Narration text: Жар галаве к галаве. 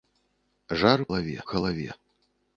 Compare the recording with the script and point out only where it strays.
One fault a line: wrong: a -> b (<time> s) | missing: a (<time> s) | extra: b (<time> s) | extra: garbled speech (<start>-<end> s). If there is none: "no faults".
no faults